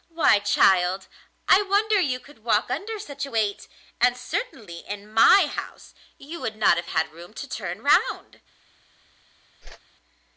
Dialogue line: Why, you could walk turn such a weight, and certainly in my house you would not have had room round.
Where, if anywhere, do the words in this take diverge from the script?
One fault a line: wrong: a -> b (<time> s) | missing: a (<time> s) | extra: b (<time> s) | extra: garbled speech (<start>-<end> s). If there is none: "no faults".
extra: child I wonder (0.4 s)
wrong: turn -> under (2.7 s)
extra: to turn (7.3 s)